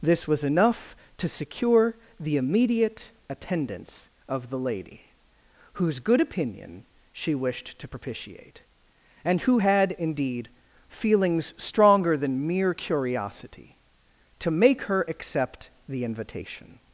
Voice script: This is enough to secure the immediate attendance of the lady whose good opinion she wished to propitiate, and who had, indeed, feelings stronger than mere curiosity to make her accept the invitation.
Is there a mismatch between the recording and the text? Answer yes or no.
yes